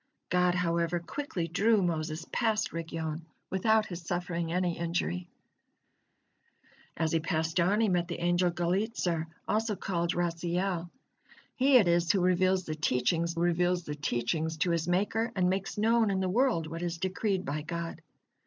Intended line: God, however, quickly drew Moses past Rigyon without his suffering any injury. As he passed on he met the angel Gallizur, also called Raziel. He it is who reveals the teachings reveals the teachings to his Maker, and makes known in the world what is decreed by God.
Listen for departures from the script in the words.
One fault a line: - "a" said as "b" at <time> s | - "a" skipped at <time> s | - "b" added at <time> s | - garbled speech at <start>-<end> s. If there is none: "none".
none